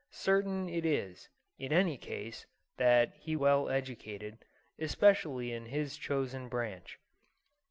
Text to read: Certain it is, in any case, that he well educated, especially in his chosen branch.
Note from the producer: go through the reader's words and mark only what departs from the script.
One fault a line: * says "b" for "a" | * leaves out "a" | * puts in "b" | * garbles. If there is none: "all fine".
all fine